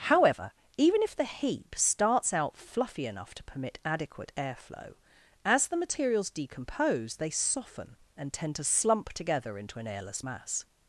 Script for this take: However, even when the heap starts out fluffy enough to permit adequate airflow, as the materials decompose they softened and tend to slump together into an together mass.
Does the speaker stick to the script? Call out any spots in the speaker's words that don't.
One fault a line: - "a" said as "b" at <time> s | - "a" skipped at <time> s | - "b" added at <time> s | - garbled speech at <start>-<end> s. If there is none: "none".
- "when" said as "if" at 1.0 s
- "softened" said as "soften" at 7.3 s
- "together" said as "airless" at 9.8 s